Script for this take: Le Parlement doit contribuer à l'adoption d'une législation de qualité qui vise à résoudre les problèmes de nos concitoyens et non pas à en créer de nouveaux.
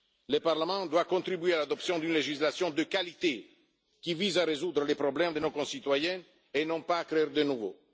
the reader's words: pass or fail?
pass